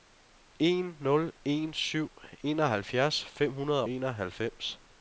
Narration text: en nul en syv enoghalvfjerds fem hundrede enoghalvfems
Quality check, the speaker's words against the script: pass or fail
pass